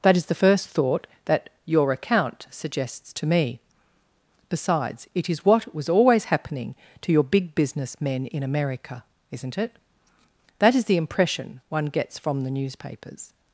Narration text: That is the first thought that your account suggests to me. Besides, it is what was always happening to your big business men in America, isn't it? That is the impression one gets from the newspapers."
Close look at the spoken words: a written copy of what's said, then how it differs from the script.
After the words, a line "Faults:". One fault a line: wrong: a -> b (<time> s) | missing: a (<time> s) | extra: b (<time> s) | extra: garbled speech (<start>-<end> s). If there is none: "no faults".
That is the first thought that your account suggests to me. Besides, it is what was always happening to your big business men in America, isn't it? That is the impression one gets from the newspapers."
Faults:
no faults